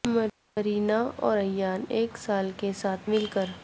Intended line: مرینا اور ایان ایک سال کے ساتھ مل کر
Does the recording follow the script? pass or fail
pass